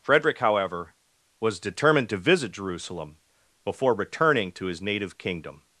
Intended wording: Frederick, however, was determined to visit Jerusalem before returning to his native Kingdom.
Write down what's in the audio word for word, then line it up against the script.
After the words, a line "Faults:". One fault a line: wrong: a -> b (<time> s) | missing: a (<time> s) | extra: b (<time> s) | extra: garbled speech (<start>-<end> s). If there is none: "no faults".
Frederick, however, was determined to visit Jerusalem before returning to his native Kingdom.
Faults:
no faults